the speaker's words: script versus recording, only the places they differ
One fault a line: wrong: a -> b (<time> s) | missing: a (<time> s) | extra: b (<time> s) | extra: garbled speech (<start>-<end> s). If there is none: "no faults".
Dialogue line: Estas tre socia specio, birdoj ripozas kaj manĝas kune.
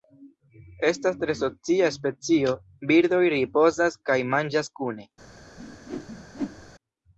no faults